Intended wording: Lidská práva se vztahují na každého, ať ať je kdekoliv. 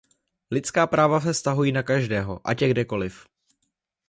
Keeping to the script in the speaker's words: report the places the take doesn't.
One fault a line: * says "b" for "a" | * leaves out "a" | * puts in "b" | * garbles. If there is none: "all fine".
* leaves out "ať"